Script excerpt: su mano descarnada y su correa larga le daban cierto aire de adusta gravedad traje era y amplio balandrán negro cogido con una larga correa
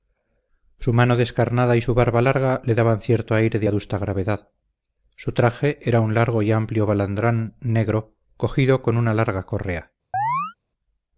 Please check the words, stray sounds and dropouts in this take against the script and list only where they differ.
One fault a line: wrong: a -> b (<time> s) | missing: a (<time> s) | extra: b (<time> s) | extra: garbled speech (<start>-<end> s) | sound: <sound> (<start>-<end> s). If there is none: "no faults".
wrong: correa -> barba (1.9 s)
extra: su (5.1 s)
extra: un largo (6.0 s)
sound: chirp (10.1-10.5 s)